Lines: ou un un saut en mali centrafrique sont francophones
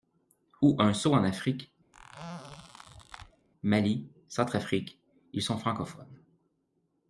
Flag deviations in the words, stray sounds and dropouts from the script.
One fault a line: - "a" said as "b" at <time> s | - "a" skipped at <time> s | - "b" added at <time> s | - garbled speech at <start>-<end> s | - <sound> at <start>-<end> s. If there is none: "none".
- "un" skipped at 0.9 s
- "afrique" added at 1.2 s
- squeak at 1.9-3.5 s
- "ils" added at 5.3 s